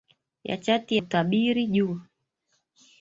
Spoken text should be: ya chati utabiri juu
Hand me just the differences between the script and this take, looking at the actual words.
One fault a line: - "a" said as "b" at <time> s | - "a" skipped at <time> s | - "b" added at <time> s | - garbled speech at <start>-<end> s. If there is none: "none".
none